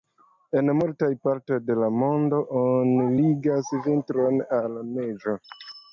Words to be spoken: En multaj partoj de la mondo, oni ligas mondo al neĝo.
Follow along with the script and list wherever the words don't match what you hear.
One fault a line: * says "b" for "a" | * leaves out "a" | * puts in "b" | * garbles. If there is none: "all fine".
* says "vintron" for "mondo"